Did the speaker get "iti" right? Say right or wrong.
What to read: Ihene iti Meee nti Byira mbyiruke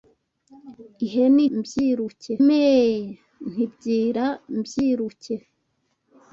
wrong